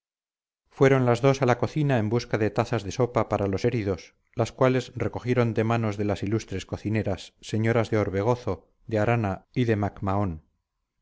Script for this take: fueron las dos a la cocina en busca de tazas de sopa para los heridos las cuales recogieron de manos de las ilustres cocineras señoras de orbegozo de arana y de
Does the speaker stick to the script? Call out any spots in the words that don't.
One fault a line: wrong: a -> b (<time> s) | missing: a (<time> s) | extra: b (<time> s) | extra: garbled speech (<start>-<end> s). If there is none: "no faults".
no faults